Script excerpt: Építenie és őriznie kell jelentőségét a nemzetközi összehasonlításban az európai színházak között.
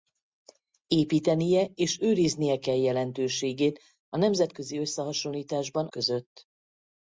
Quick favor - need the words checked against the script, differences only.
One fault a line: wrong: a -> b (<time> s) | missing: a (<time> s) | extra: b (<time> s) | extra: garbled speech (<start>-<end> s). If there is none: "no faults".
missing: az európai színházak (5.9 s)